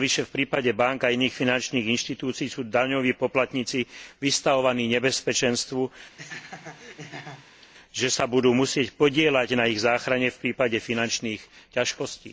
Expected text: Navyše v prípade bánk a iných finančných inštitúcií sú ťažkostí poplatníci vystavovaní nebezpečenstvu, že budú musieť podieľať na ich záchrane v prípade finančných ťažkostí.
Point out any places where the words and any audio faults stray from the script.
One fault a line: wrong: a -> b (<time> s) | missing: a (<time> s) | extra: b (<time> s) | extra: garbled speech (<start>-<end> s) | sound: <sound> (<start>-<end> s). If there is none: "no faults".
wrong: ťažkostí -> daňoví (2.6 s)
sound: laugh (6.2-7.7 s)
extra: sa (8.1 s)